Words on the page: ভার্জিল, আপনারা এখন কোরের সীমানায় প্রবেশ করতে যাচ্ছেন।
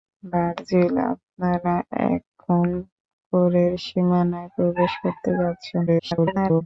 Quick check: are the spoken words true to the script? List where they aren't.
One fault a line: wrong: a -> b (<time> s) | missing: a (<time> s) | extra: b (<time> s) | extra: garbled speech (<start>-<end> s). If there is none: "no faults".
extra: garbled speech (5.9-6.6 s)